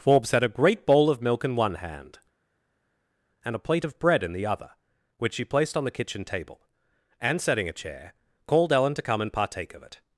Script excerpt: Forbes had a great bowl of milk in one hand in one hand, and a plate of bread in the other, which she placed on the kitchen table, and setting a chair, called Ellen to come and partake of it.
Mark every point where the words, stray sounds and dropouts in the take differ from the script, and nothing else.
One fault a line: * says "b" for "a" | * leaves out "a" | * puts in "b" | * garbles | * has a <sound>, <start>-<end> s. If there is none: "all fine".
* leaves out "in one hand"